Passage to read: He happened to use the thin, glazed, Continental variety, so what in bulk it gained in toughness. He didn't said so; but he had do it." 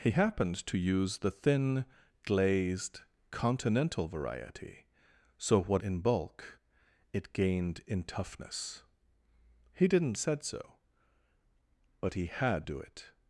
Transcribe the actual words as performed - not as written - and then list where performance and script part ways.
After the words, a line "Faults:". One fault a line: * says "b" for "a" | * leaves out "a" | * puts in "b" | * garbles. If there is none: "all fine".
He happened to use the thin, glazed, Continental variety, so what in bulk it gained in toughness. He didn't said so; but he had do it."
Faults:
all fine